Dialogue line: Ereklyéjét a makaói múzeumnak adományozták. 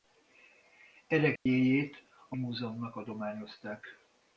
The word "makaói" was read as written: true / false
false